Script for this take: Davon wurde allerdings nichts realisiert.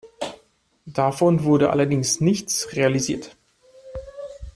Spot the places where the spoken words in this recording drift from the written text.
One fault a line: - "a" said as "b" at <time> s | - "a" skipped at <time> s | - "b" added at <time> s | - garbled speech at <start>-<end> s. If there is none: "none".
none